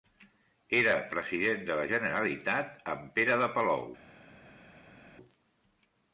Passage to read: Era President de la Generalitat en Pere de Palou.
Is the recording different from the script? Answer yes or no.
no